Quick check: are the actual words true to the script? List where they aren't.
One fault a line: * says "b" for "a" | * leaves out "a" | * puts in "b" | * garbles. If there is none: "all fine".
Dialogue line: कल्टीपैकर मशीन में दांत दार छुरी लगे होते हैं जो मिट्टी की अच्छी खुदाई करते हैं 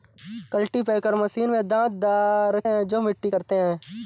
* leaves out "छुरी लगे होते"
* leaves out "की अच्छी खुदाई"